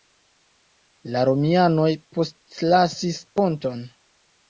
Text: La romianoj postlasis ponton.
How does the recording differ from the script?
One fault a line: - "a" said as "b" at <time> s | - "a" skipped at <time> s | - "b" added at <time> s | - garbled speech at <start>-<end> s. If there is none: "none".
none